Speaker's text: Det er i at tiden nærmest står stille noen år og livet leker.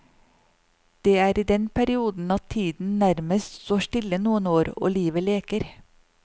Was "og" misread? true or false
false